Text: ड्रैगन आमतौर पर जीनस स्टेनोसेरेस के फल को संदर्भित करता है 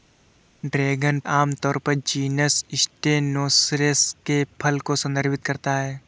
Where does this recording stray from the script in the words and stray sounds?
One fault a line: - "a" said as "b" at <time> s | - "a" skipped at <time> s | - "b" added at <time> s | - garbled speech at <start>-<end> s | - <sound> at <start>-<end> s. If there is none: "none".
none